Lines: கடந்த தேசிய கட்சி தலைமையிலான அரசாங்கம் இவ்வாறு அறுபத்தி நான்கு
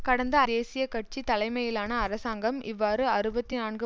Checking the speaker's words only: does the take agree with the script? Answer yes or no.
yes